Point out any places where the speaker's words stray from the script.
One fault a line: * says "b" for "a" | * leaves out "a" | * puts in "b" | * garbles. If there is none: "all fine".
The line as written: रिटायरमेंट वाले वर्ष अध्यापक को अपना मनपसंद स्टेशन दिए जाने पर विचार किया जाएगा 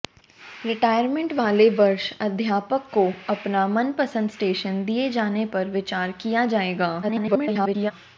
* garbles